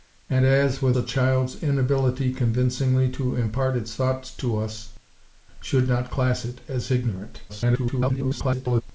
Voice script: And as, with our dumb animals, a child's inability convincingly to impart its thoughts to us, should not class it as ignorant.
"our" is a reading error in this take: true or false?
true